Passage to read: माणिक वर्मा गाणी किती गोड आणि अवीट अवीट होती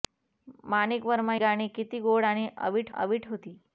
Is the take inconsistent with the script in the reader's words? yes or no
no